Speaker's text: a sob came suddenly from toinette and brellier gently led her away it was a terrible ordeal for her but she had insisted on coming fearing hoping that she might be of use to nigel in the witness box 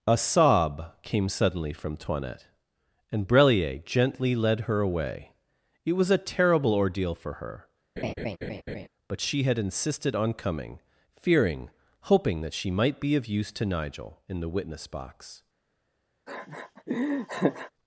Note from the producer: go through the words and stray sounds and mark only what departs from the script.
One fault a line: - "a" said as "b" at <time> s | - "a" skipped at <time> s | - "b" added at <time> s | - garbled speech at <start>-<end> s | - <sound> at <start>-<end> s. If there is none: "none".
- laugh at 8.0-8.9 s
- laugh at 16.3-17.7 s